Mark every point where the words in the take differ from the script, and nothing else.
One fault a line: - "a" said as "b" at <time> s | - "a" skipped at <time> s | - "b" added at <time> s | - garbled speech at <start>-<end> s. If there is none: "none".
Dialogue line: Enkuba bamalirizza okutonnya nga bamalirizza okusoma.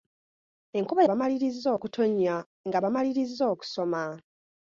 none